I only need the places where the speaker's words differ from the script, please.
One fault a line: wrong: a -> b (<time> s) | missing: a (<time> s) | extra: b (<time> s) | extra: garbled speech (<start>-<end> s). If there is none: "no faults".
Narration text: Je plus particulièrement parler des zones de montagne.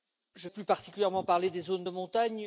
no faults